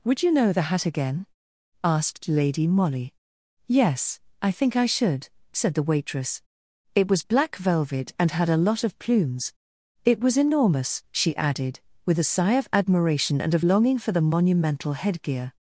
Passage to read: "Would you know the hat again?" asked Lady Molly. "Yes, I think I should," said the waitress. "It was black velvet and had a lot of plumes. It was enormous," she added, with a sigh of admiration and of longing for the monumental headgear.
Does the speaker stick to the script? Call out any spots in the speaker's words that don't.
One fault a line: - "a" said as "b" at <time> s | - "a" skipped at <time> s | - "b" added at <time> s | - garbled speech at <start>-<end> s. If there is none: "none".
none